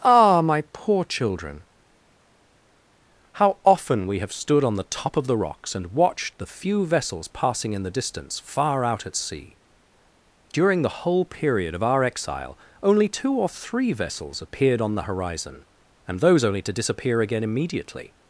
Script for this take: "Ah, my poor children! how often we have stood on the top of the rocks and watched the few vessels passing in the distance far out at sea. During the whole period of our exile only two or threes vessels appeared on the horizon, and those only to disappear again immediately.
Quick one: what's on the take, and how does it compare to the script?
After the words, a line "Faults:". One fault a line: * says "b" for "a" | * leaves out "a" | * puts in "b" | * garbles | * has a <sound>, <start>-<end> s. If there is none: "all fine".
"Ah, my poor children! how often we have stood on the top of the rocks and watched the few vessels passing in the distance far out at sea. During the whole period of our exile only two or three vessels appeared on the horizon, and those only to disappear again immediately.
Faults:
* says "three" for "threes"